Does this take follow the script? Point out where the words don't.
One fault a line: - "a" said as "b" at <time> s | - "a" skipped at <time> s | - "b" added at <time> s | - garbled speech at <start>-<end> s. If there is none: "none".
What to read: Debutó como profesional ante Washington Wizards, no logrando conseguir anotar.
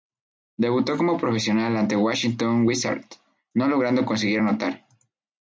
none